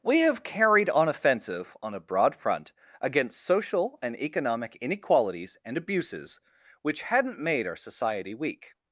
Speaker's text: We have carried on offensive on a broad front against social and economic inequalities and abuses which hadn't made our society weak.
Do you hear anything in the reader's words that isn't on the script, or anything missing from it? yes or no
no